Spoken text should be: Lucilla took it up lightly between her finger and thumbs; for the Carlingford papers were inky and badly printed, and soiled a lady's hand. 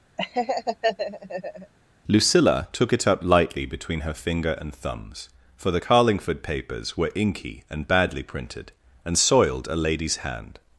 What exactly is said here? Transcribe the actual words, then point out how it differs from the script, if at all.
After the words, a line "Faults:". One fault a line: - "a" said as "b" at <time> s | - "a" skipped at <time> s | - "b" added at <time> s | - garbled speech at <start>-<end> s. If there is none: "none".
Lucilla took it up lightly between her finger and thumbs; for the Carlingford papers were inky and badly printed, and soiled a lady's hand.
Faults:
none